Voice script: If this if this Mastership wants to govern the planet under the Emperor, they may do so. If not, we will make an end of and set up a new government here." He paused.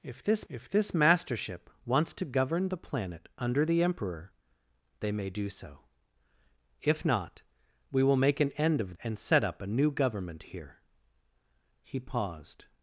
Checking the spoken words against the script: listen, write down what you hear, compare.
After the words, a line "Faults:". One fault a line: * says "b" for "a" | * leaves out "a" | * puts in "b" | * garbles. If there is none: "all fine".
If this if this Mastership wants to govern the planet under the Emperor, they may do so. If not, we will make an end of and set up a new government here." He paused.
Faults:
all fine